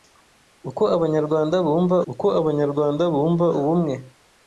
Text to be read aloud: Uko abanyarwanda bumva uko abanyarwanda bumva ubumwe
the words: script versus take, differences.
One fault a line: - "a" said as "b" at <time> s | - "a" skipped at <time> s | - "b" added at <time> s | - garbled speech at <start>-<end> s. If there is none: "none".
none